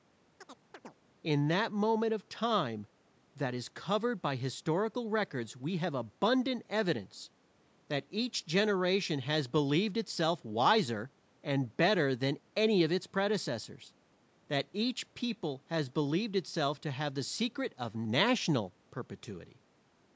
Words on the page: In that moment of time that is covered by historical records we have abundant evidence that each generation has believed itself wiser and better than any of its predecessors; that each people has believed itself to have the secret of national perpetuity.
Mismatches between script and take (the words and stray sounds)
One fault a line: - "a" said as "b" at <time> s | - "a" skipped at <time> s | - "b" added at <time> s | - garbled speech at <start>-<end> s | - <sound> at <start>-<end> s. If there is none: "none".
- chirp at 0.4-1.0 s